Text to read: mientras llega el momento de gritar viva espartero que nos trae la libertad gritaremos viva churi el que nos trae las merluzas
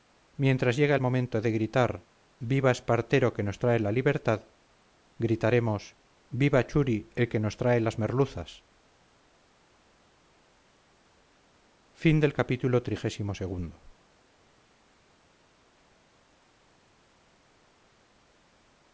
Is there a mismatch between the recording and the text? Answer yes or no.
no